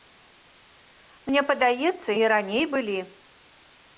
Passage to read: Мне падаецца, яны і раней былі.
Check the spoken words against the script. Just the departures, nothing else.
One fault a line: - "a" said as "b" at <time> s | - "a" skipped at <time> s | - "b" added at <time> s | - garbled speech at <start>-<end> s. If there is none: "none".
- "яны" skipped at 2.1 s